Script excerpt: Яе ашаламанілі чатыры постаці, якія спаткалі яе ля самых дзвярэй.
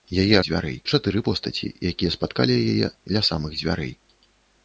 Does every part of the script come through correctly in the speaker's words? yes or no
no